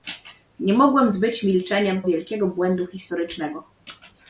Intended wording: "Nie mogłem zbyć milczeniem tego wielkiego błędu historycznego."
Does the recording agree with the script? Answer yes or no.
no